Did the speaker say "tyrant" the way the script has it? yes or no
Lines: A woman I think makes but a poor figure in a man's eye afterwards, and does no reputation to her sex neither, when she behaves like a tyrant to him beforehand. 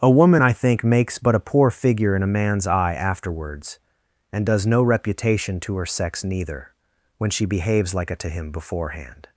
no